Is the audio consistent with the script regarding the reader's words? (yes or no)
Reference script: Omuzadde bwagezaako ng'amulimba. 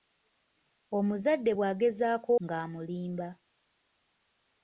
yes